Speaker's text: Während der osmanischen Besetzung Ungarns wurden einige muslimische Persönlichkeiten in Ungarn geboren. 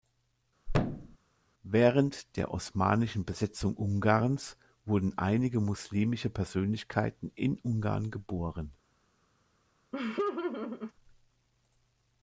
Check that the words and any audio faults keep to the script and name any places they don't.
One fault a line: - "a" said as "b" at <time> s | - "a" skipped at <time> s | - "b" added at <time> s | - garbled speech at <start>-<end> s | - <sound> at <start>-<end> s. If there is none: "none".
- thud at 0.7-1.2 s
- laugh at 9.9-10.9 s